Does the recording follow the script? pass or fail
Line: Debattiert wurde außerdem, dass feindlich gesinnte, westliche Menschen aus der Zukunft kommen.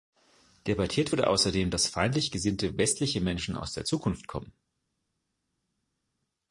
pass